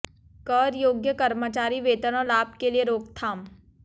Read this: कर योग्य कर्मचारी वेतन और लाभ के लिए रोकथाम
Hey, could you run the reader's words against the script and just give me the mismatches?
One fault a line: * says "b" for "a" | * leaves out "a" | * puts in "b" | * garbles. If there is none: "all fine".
all fine